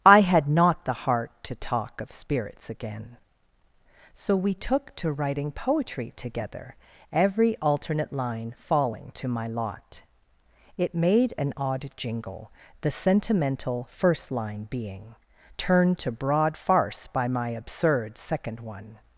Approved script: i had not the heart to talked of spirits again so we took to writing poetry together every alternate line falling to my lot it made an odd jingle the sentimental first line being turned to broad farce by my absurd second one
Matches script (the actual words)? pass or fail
fail